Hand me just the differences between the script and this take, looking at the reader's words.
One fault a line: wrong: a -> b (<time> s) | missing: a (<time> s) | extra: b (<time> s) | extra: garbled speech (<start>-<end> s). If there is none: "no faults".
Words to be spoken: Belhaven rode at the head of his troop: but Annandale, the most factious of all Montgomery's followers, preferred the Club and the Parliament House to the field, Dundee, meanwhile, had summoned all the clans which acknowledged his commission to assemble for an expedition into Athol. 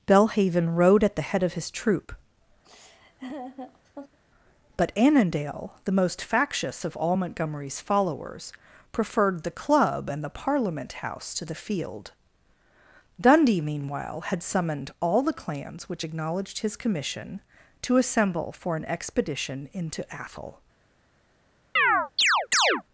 no faults